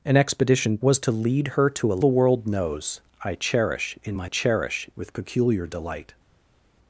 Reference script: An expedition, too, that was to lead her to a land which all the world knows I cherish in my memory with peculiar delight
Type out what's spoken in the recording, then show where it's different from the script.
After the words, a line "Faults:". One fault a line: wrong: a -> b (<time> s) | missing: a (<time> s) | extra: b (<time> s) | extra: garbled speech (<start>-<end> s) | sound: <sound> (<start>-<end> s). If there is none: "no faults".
An expedition, was to lead her to a the world knows I cherish in my cherish with peculiar delight
Faults:
missing: too that (0.8 s)
missing: land which all (2.0 s)
wrong: memory -> cherish (4.2 s)